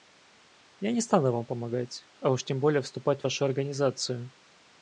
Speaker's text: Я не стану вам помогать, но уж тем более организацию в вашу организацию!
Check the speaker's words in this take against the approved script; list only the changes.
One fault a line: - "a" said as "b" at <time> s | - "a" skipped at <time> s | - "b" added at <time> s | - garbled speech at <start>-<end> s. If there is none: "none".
- "но" said as "а" at 2.2 s
- "организацию" said as "вступать" at 2.8 s